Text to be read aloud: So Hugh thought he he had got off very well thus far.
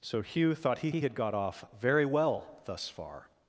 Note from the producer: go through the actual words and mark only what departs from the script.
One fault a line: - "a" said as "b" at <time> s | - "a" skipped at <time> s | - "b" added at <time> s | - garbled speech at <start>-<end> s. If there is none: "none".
none